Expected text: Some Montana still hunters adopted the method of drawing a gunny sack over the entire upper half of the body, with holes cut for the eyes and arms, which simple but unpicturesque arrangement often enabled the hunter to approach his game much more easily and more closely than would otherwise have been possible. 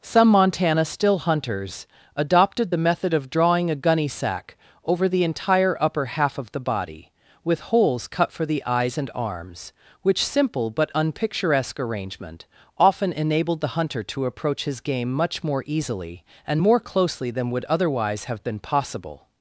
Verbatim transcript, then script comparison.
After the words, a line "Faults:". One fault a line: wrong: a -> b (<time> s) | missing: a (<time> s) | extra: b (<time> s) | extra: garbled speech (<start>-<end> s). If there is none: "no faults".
Some Montana still hunters adopted the method of drawing a gunny sack over the entire upper half of the body, with holes cut for the eyes and arms, which simple but unpicturesque arrangement often enabled the hunter to approach his game much more easily and more closely than would otherwise have been possible.
Faults:
no faults